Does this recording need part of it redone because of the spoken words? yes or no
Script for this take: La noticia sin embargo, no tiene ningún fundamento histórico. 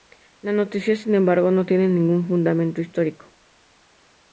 no